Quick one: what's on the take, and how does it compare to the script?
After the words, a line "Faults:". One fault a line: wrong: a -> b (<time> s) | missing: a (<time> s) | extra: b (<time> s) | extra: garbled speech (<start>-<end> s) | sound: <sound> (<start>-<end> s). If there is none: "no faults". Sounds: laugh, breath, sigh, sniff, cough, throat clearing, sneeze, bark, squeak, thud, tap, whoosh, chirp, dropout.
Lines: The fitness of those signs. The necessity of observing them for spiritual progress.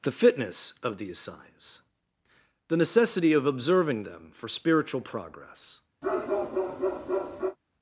The fitness of these signs. The necessity of observing them for spiritual progress.
Faults:
wrong: those -> these (1.0 s)
sound: bark (6.0-7.6 s)